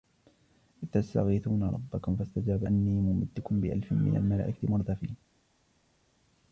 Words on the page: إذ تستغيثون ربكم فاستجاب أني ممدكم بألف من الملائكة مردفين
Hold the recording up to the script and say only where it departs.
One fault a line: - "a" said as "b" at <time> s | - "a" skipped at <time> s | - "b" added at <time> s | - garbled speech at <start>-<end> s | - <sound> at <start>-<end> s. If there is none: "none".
none